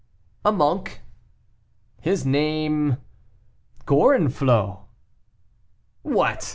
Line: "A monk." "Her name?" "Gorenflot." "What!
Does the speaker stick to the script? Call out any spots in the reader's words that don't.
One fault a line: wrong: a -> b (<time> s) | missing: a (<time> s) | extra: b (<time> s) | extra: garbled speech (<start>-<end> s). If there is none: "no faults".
wrong: Her -> His (2.0 s)